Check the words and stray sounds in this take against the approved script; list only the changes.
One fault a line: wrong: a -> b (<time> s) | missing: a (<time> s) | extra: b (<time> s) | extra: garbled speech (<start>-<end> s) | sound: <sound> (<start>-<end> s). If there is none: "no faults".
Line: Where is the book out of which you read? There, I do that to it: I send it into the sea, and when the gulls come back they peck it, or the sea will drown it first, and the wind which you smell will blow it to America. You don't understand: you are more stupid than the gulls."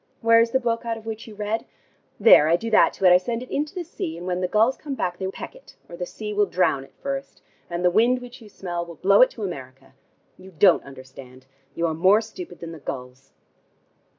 no faults